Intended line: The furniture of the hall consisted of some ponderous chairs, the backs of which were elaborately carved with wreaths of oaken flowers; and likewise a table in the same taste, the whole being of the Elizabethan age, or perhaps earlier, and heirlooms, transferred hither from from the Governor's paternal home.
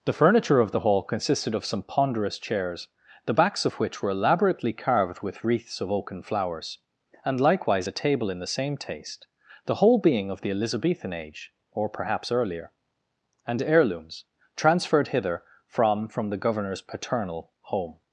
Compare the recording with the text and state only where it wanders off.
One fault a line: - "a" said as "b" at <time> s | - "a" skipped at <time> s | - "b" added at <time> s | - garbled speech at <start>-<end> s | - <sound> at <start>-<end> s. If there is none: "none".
none